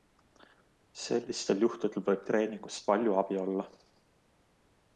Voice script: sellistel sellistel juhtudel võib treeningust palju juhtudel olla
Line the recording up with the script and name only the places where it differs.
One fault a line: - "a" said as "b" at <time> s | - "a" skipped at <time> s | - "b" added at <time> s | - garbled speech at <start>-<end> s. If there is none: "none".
- "sellistel" skipped at 1.6 s
- "juhtudel" said as "abi" at 3.2 s